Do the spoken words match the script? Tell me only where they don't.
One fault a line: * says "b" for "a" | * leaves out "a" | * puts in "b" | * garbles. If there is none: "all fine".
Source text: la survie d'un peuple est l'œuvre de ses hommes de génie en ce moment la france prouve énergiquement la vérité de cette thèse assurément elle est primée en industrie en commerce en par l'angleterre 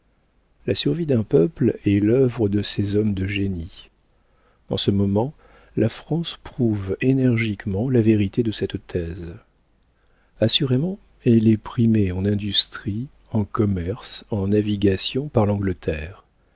* puts in "navigation"